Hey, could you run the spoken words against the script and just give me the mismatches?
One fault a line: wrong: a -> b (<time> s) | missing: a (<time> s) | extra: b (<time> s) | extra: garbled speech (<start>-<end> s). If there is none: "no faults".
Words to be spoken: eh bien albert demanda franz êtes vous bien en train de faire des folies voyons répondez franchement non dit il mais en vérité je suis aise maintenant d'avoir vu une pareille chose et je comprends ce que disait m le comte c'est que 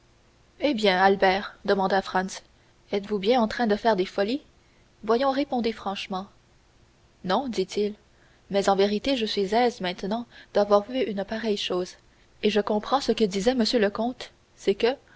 no faults